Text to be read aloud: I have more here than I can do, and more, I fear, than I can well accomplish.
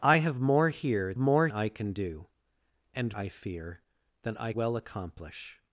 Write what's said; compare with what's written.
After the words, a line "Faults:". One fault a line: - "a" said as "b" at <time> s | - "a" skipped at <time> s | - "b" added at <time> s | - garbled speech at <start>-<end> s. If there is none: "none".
I have more here more I can do, and I fear, than I well accomplish.
Faults:
- "than" said as "more" at 1.2 s
- "more" skipped at 3.1 s
- "can" skipped at 4.5 s